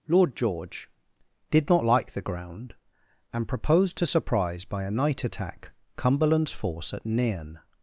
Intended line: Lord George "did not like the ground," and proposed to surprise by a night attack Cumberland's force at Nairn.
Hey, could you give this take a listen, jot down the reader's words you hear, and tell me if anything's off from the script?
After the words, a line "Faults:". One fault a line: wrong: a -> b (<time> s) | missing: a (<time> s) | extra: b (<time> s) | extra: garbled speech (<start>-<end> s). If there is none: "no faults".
Lord George "did not like the ground," and proposed to surprise by a night attack Cumberland's force at Nairn.
Faults:
no faults